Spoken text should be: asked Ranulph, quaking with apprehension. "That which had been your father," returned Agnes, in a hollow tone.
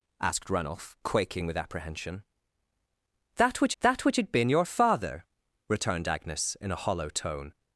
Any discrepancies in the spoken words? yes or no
yes